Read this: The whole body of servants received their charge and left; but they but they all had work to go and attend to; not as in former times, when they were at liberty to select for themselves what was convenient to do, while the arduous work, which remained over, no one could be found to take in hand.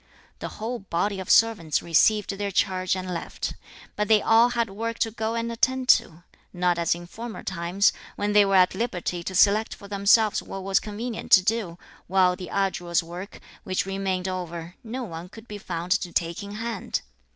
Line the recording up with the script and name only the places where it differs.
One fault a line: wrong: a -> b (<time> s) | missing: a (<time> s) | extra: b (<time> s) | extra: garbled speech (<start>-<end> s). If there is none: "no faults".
missing: but they (4.2 s)